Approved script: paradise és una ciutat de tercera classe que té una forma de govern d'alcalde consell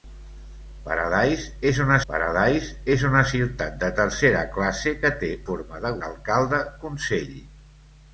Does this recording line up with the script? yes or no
no